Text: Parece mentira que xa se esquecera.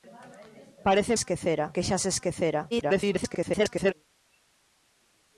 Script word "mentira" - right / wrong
wrong